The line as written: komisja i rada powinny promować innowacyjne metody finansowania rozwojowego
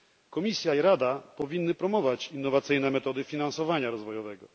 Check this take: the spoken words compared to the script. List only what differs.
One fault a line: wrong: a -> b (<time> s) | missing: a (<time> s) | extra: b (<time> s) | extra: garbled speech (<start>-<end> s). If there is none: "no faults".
no faults